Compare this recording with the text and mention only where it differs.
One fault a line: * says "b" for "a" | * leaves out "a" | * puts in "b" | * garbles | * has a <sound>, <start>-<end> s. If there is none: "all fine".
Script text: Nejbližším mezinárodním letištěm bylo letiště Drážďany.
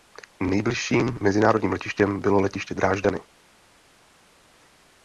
all fine